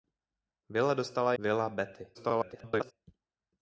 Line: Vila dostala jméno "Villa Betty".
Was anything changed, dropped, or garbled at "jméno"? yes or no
yes